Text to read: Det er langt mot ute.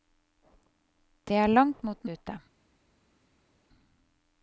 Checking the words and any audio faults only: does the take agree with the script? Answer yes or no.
yes